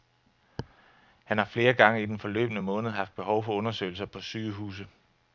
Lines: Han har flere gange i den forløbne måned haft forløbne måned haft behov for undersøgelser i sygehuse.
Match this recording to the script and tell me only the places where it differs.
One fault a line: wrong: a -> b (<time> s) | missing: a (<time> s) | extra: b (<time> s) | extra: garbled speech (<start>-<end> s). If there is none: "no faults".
missing: forløbne måned haft (3.2 s)
wrong: i -> på (4.0 s)